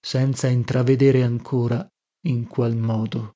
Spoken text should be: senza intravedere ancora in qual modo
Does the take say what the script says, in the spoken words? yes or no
yes